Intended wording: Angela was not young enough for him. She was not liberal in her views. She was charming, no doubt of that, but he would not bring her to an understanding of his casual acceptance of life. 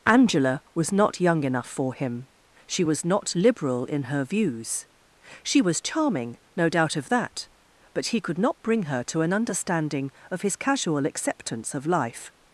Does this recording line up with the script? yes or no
no